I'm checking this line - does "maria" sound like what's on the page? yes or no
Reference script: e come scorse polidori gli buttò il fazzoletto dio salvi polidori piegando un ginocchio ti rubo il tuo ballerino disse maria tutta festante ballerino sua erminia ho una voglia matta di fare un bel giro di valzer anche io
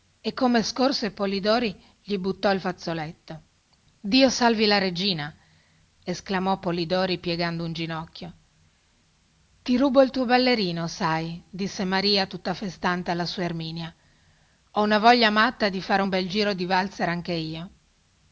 yes